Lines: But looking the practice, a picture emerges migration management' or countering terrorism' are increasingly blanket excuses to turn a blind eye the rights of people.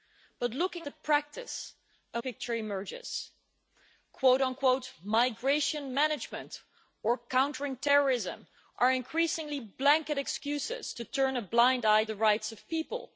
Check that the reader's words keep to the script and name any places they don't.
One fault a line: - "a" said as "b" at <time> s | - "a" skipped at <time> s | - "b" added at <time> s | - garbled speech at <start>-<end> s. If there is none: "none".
none